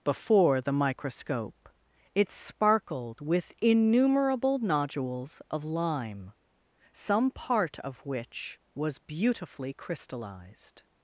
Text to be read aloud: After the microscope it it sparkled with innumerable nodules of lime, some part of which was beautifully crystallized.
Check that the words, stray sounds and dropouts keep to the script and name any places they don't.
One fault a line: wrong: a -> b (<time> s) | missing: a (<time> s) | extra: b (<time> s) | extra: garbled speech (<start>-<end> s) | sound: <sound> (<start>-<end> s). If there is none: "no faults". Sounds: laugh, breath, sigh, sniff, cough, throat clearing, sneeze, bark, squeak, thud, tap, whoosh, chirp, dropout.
wrong: After -> Before (0.0 s)
missing: it (2.3 s)